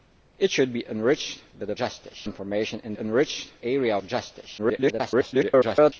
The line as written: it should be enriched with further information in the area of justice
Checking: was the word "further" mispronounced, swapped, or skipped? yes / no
yes